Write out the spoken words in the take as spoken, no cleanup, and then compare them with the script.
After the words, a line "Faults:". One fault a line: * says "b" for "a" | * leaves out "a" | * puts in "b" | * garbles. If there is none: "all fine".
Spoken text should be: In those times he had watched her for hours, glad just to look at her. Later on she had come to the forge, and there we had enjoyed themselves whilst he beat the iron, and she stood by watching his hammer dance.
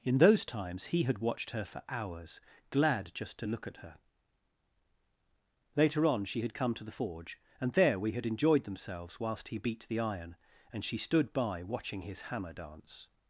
In those times he had watched her for hours, glad just to look at her. Later on she had come to the forge, and there we had enjoyed themselves whilst he beat the iron, and she stood by watching his hammer dance.
Faults:
all fine